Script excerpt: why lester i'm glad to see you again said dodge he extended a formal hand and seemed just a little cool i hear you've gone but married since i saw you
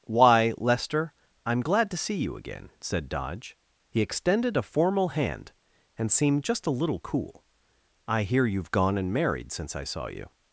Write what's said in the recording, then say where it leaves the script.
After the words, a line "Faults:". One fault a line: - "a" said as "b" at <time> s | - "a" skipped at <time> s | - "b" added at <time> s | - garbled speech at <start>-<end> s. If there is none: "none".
why lester i'm glad to see you again said dodge he extended a formal hand and seemed just a little cool i hear you've gone and married since i saw you
Faults:
- "but" said as "and" at 9.0 s